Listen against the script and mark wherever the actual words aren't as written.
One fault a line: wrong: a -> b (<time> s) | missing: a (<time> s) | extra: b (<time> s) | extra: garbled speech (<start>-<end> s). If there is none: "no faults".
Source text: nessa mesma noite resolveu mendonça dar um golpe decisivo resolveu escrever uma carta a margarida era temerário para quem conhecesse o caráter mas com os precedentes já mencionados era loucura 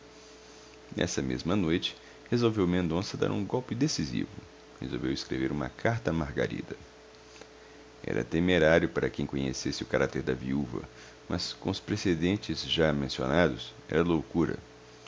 extra: da viúva (10.2 s)